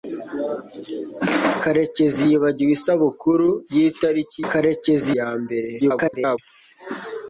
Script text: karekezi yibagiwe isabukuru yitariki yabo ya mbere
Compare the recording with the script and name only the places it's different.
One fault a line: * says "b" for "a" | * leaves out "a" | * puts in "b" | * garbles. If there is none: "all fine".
* says "karekezi" for "yabo"
* garbles